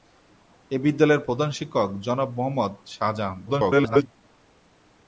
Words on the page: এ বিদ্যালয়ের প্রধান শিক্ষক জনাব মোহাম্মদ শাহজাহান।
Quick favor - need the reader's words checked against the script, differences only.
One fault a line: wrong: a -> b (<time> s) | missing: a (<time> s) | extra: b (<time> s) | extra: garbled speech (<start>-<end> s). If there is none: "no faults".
extra: garbled speech (3.5-4.1 s)